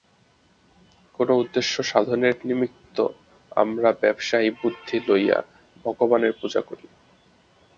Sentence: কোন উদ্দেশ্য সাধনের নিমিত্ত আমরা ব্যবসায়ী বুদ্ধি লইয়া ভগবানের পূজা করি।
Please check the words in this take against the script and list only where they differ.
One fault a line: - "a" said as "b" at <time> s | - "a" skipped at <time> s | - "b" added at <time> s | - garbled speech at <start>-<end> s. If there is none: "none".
none